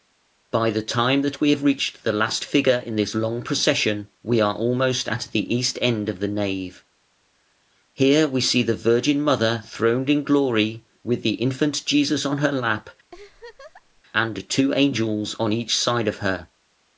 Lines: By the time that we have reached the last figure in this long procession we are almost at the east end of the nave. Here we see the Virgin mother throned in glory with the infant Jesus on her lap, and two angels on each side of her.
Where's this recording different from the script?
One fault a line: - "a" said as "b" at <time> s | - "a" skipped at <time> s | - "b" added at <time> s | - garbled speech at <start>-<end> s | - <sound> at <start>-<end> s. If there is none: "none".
- laugh at 13.1-14.0 s